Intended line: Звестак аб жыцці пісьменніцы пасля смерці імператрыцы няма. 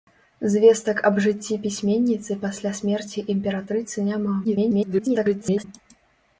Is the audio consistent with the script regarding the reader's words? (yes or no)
no